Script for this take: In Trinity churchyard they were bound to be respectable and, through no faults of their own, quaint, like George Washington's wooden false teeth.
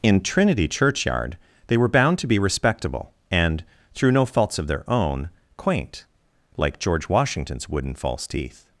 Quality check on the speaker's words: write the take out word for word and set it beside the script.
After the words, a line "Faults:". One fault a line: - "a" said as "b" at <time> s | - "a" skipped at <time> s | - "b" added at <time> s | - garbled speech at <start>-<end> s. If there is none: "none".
In Trinity churchyard they were bound to be respectable and, through no faults of their own, quaint, like George Washington's wooden false teeth.
Faults:
none